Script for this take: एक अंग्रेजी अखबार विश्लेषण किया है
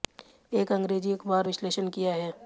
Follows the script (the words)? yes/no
yes